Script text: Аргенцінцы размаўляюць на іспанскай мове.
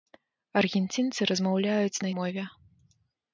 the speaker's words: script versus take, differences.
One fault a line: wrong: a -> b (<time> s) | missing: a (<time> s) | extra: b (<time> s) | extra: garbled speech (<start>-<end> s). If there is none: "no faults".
missing: іспанскай (2.1 s)